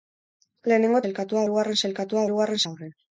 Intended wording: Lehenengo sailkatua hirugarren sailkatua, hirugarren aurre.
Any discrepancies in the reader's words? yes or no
no